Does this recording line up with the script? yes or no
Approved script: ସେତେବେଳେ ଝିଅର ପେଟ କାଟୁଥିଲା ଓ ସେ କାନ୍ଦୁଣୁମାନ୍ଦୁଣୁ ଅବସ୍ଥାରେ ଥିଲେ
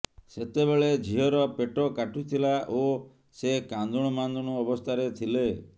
yes